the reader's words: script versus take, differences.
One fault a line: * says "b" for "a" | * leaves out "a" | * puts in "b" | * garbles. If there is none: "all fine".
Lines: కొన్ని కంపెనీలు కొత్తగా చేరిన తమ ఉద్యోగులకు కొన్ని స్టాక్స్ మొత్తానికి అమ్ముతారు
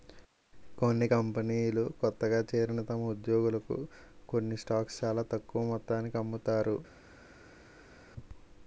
* puts in "చాలా తక్కువ"